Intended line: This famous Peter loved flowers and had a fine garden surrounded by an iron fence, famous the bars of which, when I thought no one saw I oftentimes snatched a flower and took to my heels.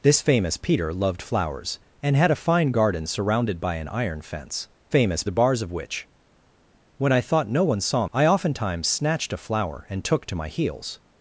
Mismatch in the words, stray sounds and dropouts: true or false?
false